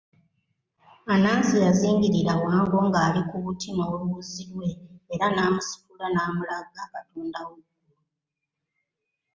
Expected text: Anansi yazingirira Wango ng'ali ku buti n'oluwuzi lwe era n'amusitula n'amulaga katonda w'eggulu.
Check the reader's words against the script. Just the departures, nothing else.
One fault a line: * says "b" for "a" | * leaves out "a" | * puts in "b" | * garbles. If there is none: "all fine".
all fine